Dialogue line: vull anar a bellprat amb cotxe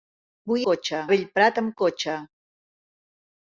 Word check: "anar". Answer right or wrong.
wrong